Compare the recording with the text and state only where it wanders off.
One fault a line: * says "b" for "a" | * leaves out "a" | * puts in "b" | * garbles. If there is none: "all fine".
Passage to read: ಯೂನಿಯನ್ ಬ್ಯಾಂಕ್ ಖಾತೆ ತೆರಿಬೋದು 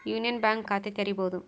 all fine